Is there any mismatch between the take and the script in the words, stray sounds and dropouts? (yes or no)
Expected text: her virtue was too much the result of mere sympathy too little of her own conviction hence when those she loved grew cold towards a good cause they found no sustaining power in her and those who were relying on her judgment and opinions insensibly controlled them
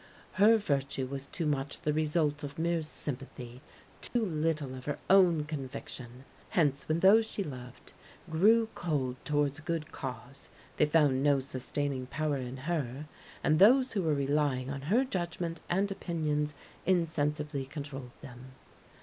yes